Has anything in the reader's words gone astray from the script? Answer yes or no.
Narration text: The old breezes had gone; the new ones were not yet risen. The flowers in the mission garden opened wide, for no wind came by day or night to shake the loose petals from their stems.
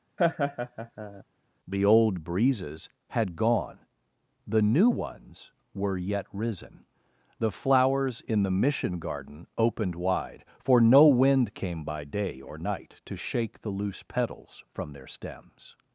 yes